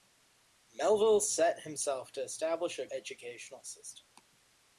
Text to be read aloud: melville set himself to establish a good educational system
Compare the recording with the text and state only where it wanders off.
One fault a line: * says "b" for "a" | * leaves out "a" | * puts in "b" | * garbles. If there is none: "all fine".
* leaves out "good"